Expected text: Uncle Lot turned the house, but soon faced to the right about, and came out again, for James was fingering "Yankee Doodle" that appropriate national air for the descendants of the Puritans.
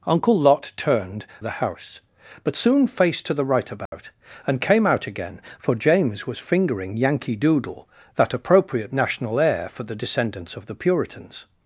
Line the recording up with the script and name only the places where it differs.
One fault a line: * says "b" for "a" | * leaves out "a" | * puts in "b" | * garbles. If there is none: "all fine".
all fine